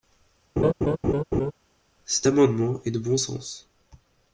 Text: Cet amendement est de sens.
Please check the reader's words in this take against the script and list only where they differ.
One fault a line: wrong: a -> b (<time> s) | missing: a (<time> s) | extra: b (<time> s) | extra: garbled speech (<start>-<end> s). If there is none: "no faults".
extra: bon (3.0 s)